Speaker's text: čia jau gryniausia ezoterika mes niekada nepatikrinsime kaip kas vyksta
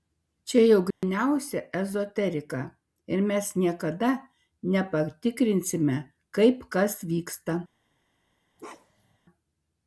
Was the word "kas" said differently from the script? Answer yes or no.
no